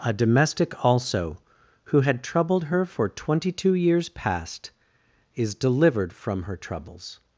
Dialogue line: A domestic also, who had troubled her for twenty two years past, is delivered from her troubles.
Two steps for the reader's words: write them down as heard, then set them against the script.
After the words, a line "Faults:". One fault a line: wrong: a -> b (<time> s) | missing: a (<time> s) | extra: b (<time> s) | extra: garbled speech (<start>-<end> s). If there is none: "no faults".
A domestic also, who had troubled her for twenty two years past, is delivered from her troubles.
Faults:
no faults